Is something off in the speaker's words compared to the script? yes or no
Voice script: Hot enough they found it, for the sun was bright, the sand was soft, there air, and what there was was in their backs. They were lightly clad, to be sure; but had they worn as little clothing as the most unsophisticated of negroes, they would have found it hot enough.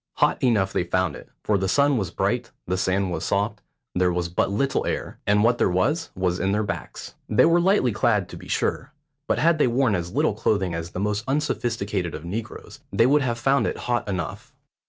yes